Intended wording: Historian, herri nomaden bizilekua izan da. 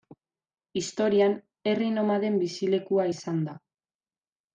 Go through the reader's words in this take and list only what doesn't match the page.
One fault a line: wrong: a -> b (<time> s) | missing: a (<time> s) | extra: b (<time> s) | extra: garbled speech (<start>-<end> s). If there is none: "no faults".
no faults